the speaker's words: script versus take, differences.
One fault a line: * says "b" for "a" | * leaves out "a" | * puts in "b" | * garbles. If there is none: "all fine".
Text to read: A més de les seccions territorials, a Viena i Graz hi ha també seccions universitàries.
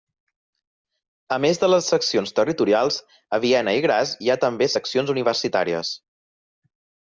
all fine